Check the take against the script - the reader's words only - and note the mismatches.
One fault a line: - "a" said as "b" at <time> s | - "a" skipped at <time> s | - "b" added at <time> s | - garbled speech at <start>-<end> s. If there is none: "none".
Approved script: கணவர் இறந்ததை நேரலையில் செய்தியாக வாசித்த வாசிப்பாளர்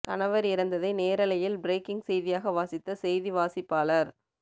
- "பிரேக்கிங்" added at 1.6 s
- "செய்தி" added at 3.0 s